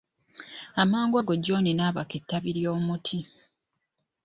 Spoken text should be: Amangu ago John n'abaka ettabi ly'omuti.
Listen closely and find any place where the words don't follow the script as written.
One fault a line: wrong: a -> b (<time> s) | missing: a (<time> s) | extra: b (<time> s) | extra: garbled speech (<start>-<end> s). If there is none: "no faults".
no faults